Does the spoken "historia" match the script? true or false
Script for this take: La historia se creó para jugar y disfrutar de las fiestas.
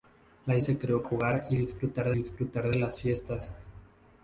false